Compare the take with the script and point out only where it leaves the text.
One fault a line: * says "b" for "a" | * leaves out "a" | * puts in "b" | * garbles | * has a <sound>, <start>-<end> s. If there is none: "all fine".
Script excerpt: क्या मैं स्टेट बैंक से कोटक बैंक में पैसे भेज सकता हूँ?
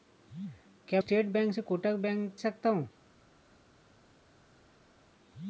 * leaves out "मैं"
* leaves out "में पैसे भेज"